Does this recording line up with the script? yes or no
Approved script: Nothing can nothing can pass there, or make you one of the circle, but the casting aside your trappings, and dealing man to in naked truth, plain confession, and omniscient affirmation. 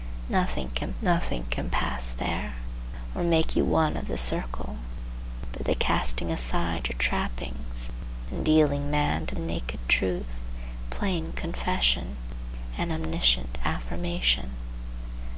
yes